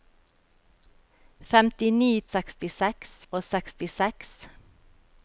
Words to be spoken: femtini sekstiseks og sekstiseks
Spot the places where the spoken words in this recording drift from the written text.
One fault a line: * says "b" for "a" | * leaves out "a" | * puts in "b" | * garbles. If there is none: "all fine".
all fine